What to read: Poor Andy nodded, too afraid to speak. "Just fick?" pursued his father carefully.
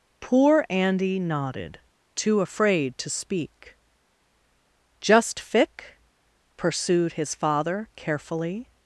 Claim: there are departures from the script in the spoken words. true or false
false